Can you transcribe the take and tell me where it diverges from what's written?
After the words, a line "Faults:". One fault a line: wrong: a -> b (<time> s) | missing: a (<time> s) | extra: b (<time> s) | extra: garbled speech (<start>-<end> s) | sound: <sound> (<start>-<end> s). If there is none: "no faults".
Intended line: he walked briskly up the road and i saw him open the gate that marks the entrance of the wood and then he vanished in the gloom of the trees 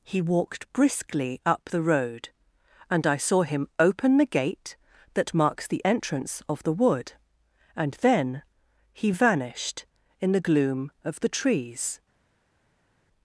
he walked briskly up the road and i saw him open the gate that marks the entrance of the wood and then he vanished in the gloom of the trees
Faults:
no faults